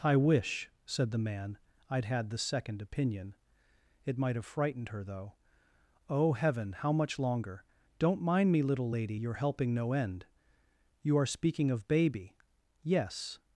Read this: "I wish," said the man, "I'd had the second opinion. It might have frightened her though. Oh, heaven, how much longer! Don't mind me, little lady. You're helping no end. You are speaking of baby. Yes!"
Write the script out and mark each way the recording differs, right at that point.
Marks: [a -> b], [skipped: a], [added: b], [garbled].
"I wish," said the man, "I'd had the second opinion. It might have frightened her though. Oh, heaven, how much longer! Don't mind me, little lady. You're helping no end. You are speaking of baby. Yes!"